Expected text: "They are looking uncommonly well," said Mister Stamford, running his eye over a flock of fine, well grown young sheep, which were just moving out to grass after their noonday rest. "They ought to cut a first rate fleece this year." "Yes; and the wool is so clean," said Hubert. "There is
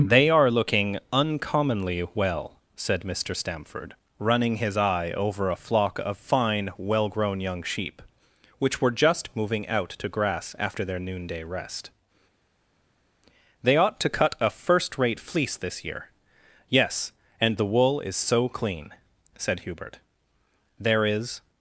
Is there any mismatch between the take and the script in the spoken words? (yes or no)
no